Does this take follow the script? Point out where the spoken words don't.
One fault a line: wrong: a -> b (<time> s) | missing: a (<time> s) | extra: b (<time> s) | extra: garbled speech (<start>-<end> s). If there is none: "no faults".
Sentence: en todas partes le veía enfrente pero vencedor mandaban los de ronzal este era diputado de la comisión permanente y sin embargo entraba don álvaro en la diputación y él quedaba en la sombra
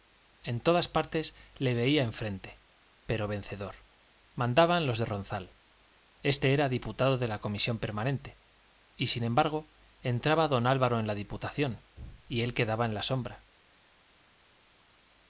no faults